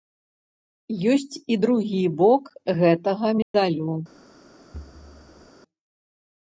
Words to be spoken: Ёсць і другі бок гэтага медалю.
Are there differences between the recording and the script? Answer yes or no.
no